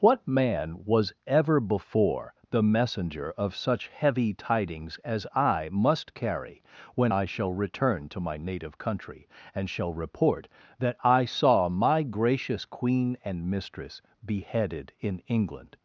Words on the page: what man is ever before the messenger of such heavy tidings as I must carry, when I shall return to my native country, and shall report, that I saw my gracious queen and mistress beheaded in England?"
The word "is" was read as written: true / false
false